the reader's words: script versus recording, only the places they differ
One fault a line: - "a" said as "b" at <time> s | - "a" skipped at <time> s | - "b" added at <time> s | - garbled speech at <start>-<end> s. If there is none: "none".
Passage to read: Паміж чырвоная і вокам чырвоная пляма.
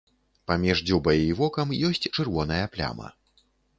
- "чырвоная" said as "дзюбай" at 0.9 s
- "ёсць" added at 1.9 s